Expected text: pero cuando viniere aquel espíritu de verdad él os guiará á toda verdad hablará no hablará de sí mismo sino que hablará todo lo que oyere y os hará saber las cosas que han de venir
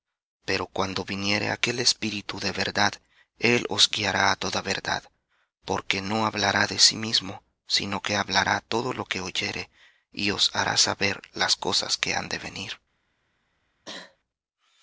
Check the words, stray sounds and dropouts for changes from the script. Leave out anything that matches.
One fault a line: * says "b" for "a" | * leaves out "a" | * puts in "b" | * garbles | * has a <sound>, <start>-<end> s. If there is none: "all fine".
* says "porque" for "hablará"
* has a cough, 13.9-14.2 s